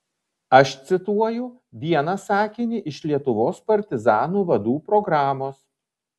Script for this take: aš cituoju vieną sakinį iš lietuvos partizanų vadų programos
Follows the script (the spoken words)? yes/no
yes